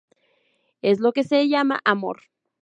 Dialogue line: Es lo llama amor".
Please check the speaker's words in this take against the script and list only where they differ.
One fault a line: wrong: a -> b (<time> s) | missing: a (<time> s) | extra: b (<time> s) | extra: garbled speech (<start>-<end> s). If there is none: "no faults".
extra: que se (1.1 s)